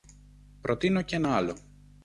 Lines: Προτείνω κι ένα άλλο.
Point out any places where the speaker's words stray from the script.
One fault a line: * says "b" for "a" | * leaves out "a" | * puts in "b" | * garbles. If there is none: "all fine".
all fine